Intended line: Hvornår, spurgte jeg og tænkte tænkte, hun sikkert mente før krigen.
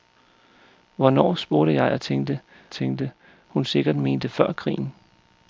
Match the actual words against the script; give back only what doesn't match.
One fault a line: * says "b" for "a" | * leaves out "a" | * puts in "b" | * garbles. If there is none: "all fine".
all fine